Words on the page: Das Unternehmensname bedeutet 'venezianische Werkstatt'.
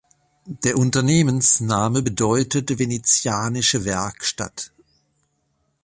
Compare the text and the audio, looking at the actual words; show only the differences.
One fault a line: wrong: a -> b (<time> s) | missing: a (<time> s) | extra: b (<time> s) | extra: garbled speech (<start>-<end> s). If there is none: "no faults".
wrong: Das -> Der (0.5 s)